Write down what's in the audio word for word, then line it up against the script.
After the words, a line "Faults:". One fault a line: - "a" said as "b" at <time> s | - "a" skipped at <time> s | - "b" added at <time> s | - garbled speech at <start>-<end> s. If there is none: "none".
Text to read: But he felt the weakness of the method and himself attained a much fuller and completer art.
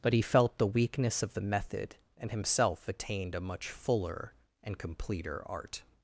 But he felt the weakness of the method and himself attained a much fuller and completer art.
Faults:
none